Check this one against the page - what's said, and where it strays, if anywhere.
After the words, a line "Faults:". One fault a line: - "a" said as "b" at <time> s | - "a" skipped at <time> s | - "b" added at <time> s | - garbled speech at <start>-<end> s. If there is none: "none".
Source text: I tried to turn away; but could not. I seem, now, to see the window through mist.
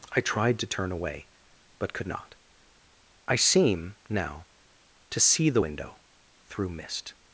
I tried to turn away; but could not. I seem, now, to see the window through mist.
Faults:
none